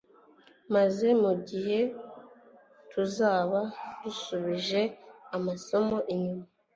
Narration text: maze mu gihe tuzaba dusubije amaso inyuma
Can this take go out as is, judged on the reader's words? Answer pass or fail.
pass